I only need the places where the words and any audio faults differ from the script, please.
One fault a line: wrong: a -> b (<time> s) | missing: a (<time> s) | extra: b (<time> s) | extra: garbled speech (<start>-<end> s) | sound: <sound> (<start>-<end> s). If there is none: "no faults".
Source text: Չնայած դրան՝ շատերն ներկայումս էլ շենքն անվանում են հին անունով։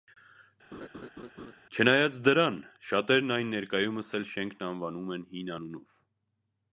sound: laugh (0.7-1.5 s)
extra: այն (3.4 s)